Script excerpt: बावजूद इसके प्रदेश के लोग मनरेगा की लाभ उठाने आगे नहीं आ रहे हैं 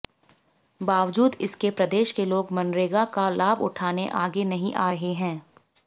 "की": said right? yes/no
no